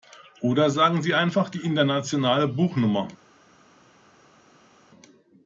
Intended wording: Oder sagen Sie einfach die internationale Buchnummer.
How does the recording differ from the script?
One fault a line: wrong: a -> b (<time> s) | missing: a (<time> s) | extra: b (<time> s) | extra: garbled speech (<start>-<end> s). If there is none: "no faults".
no faults